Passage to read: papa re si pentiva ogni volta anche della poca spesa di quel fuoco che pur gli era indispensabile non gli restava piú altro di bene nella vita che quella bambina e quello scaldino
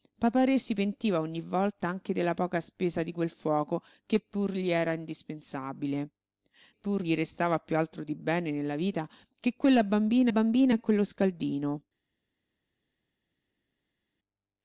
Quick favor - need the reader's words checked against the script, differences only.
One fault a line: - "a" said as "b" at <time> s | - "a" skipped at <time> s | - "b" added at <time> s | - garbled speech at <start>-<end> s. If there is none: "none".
- "non" said as "pur" at 6.7 s
- "bambina" added at 10.3 s